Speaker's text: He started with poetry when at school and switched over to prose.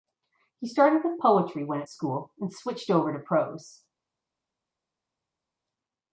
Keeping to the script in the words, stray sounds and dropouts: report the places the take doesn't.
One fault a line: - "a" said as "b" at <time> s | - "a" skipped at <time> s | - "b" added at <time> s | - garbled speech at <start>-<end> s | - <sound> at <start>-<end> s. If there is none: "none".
none